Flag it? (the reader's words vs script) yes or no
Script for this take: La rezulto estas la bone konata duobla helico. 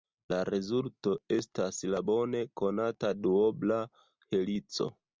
no